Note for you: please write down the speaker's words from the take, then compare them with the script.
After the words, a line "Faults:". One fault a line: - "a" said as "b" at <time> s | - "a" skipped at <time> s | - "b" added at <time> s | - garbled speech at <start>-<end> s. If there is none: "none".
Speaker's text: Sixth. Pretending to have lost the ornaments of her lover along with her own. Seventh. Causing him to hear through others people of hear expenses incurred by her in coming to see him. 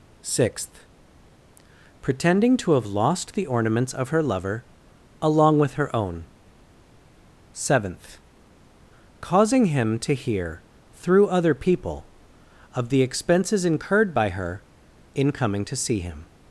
Sixth. Pretending to have lost the ornaments of her lover along with her own. Seventh. Causing him to hear through other people of the expenses incurred by her in coming to see him.
Faults:
- "others" said as "other" at 11.3 s
- "hear" said as "the" at 12.9 s